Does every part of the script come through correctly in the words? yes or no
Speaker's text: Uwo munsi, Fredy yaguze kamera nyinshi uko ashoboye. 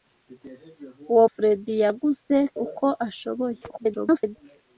no